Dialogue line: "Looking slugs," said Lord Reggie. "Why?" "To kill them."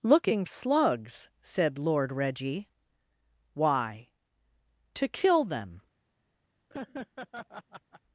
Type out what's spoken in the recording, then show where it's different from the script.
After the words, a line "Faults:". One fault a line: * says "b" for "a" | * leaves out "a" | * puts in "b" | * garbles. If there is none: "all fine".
"Looking slugs," said Lord Reggie. "Why?" "To kill them."
Faults:
all fine